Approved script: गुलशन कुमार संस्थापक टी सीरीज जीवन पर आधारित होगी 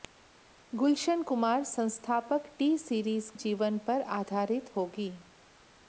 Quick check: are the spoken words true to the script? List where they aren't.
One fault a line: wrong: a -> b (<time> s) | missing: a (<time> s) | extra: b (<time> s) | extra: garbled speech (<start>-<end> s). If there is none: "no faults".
no faults